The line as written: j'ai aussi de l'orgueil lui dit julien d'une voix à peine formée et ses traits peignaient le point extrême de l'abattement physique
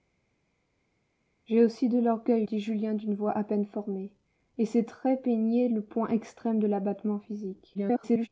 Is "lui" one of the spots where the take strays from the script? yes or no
yes